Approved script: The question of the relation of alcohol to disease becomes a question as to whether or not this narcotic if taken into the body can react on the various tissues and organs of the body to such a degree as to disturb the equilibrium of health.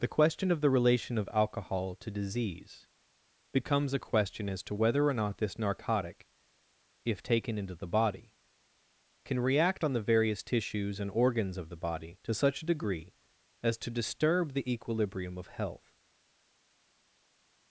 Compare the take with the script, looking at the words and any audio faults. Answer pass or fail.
pass